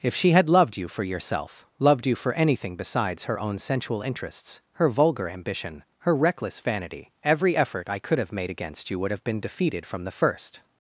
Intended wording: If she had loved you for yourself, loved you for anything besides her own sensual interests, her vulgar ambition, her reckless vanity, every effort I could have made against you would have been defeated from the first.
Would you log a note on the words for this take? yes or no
no